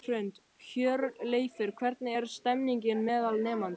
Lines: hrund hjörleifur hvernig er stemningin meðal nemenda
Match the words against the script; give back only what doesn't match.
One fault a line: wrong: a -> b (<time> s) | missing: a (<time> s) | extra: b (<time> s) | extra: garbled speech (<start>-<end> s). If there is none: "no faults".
no faults